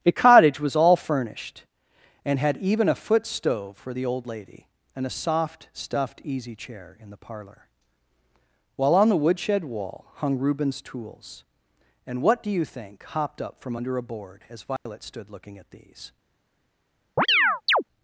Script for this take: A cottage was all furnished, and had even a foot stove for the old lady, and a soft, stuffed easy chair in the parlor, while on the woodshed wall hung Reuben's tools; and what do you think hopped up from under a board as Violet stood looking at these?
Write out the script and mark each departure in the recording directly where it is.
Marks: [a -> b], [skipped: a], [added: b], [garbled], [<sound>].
A cottage was all furnished, and had even a foot stove for the old lady, and a soft, stuffed easy chair in the parlor, while on the woodshed wall hung Reuben's tools; and what do you think hopped up from under a board as Violet [dropout] stood looking at these? [chirp]